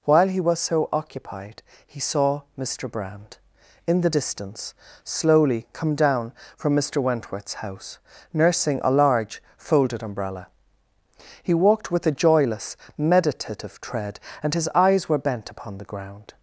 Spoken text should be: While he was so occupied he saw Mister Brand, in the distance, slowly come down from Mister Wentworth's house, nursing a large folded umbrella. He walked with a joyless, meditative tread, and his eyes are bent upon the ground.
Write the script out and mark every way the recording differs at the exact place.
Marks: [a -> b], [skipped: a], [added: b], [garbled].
While he was so occupied he saw Mister Brand, in the distance, slowly come down from Mister Wentworth's house, nursing a large folded umbrella. He walked with a joyless, meditative tread, and his eyes [are -> were] bent upon the ground.